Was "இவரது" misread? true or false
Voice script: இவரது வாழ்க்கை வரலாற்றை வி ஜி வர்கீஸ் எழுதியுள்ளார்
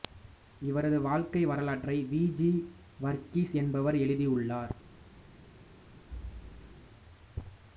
false